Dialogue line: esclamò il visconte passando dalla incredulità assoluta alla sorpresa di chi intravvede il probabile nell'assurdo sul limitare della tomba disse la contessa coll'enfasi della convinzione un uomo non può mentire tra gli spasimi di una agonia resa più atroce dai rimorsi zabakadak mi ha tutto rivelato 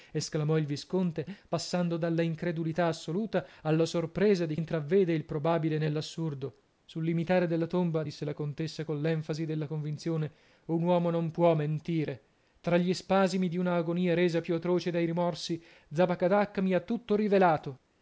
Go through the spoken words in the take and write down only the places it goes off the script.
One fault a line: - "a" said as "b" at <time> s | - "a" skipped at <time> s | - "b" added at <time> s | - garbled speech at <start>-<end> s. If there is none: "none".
- "chi" skipped at 4.6 s